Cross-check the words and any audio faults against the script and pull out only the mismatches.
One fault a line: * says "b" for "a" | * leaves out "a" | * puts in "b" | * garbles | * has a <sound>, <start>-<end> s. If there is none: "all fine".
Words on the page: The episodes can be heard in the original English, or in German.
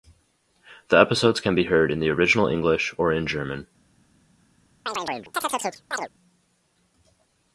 * has a chirp, 4.9-6.1 s